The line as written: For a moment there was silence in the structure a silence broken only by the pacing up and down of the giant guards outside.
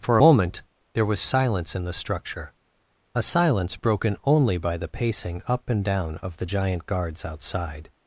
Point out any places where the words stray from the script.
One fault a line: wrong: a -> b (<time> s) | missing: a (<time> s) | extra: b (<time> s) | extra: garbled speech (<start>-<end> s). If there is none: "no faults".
missing: a (0.2 s)